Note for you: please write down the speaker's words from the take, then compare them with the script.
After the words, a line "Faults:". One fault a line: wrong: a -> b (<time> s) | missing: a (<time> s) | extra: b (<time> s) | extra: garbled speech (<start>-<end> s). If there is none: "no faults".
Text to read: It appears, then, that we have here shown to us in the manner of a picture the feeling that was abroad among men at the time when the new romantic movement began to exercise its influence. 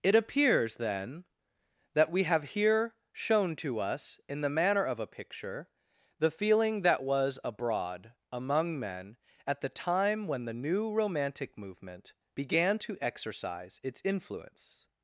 It appears, then, that we have here shown to us in the manner of a picture the feeling that was abroad among men at the time when the new romantic movement began to exercise its influence.
Faults:
no faults